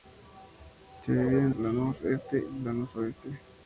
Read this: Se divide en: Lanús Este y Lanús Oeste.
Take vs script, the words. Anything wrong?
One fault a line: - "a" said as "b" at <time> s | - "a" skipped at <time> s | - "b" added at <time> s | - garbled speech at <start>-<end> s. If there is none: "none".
none